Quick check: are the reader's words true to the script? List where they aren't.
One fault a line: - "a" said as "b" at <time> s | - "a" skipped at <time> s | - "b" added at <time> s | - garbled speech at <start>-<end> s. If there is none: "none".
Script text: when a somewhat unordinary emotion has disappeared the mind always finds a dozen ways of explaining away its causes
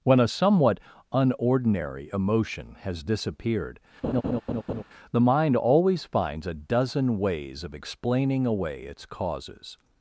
none